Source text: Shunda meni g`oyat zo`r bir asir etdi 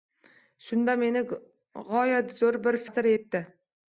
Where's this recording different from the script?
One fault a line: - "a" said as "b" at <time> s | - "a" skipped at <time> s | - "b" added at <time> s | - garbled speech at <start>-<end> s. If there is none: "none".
none